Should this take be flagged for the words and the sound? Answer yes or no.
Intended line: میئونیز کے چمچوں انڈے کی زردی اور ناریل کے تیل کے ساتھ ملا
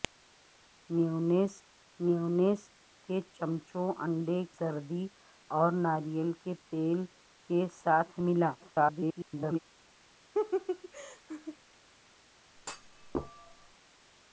yes